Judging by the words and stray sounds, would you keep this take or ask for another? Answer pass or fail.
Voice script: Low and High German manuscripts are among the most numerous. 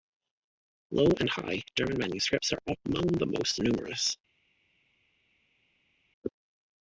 pass